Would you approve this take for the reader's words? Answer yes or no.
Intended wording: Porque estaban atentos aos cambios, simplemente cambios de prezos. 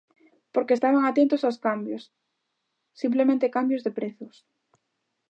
yes